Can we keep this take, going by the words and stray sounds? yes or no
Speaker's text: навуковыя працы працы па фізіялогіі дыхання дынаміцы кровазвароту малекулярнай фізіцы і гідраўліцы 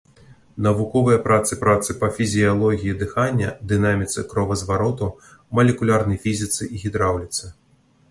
yes